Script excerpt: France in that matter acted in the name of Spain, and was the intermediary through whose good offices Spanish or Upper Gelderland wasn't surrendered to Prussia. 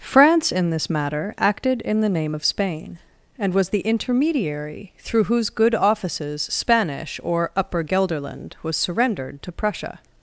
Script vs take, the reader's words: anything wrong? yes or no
yes